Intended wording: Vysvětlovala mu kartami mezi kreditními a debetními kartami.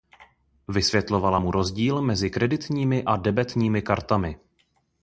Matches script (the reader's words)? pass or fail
fail